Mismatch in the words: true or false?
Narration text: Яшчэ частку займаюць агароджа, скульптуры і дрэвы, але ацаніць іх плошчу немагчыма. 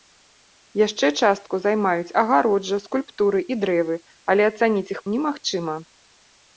true